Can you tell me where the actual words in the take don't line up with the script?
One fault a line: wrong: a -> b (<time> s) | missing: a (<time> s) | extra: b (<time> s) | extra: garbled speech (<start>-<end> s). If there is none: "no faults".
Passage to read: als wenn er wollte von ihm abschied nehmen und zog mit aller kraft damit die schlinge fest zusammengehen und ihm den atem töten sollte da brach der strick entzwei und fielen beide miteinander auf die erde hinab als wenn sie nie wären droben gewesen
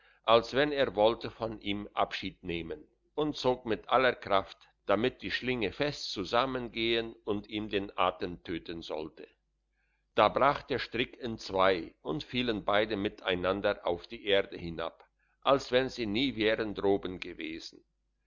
no faults